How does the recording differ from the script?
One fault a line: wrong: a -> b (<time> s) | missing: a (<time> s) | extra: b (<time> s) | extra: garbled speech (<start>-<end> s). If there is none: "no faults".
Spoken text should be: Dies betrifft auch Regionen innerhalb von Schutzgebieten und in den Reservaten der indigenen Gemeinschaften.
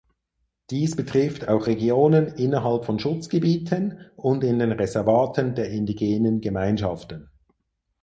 no faults